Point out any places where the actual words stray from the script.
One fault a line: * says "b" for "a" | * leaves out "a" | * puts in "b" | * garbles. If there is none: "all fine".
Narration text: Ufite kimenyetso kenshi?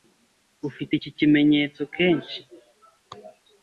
* puts in "iki"